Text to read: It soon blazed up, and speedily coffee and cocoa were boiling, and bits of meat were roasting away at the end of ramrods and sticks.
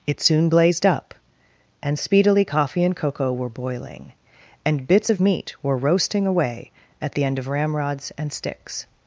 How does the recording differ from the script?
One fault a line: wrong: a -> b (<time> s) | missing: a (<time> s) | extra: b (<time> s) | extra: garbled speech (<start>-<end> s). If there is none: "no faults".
no faults